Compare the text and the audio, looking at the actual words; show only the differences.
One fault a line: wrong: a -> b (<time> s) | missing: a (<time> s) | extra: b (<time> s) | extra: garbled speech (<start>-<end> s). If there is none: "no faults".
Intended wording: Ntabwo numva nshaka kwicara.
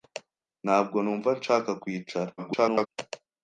extra: garbled speech (2.4-2.9 s)